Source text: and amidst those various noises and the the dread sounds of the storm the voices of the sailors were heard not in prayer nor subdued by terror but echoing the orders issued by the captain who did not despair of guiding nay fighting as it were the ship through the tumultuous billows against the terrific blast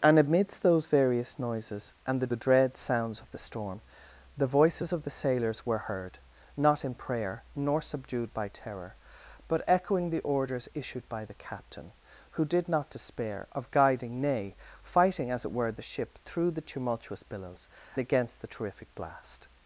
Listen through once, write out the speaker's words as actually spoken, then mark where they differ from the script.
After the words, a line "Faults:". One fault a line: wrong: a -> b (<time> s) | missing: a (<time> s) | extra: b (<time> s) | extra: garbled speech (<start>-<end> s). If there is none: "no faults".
and amidst those various noises and the the dread sounds of the storm the voices of the sailors were heard not in prayer nor subdued by terror but echoing the orders issued by the captain who did not despair of guiding nay fighting as it were the ship through the tumultuous billows against the terrific blast
Faults:
no faults